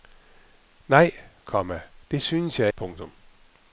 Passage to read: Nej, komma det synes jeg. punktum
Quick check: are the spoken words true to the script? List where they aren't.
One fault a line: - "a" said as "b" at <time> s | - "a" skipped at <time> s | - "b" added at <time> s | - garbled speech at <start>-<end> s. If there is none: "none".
none